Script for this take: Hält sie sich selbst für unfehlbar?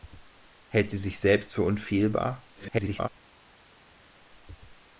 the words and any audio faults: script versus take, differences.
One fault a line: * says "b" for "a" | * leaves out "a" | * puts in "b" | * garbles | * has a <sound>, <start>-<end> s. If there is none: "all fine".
* garbles